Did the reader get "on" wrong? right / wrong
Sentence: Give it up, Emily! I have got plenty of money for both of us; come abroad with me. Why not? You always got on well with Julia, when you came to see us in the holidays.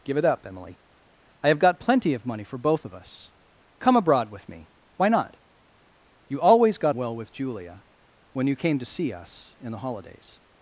wrong